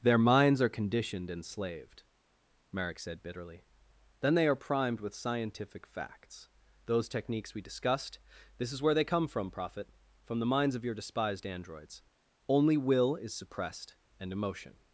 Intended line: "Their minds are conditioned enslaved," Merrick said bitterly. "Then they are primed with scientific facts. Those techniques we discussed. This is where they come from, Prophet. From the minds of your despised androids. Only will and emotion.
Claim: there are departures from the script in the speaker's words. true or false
true